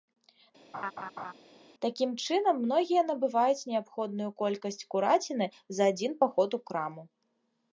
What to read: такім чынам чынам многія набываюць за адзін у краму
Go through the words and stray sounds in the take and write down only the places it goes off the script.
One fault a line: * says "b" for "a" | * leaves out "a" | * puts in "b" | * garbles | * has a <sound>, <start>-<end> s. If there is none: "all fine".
* has a laugh, 0.7-1.3 s
* leaves out "чынам"
* puts in "неабходную колькасць кураціны"
* puts in "паход"